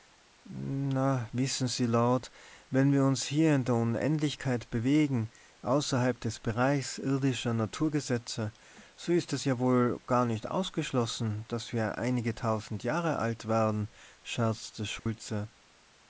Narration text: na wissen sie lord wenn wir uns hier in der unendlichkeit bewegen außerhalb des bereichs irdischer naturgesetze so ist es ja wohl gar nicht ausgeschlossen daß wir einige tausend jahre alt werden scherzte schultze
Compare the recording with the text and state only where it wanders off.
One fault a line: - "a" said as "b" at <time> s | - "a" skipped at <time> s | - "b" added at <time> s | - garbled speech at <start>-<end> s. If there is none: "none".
none